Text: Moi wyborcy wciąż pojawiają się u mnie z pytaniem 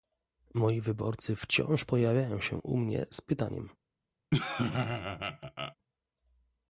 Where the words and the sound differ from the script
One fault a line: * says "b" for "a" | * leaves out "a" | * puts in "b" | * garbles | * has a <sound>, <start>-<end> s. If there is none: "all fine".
* has a laugh, 4.3-5.8 s